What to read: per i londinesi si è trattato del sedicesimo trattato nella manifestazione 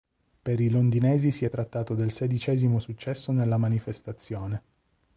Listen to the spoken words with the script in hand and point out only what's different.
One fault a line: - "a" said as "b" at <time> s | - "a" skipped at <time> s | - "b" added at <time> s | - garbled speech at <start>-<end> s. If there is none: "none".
- "trattato" said as "successo" at 2.8 s